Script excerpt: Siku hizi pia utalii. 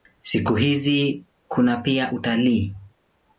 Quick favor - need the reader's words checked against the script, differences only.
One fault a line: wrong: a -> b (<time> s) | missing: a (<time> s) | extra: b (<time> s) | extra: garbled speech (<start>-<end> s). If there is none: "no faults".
extra: kuna (1.5 s)